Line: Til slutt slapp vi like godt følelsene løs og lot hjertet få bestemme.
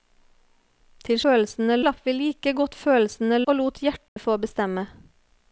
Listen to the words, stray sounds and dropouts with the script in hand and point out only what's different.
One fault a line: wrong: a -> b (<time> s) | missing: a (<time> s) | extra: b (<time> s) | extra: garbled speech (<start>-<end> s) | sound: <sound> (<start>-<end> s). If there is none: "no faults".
wrong: slutt -> følelsene (1.2 s)
missing: løs (3.4 s)
sound: dropout (4.1-4.2 s)